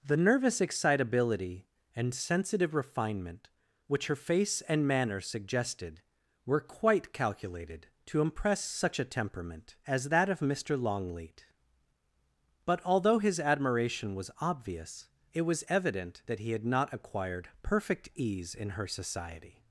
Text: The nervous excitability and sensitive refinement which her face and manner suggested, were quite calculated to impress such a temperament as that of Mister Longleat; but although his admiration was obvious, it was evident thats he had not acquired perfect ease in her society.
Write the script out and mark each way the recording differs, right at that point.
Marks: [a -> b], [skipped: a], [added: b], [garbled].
The nervous excitability and sensitive refinement which her face and manner suggested, were quite calculated to impress such a temperament as that of Mister Longleat; but although his admiration was obvious, it was evident [thats -> that] he had not acquired perfect ease in her society.